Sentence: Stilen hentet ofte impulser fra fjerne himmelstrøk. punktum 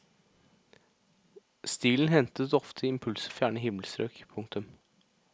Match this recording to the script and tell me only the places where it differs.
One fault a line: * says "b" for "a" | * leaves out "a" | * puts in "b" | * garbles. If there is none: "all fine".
* leaves out "fra"